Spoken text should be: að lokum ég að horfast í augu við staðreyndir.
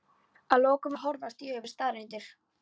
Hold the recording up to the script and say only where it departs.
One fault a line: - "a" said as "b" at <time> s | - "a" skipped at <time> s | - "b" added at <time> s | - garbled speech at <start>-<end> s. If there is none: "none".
none